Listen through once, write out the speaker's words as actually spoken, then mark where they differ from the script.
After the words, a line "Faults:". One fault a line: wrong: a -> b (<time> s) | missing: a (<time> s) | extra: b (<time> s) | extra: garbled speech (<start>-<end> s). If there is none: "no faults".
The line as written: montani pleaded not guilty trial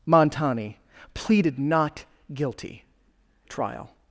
montani pleaded not guilty trial
Faults:
no faults